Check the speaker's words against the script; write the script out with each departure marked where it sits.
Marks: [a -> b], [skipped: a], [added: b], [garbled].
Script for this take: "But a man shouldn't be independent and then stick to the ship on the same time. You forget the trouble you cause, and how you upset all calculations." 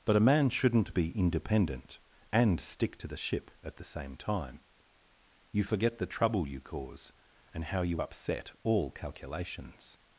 "But a man shouldn't be independent and [skipped: then] stick to the ship [on -> at] the same time. You forget the trouble you cause, and how you upset all calculations."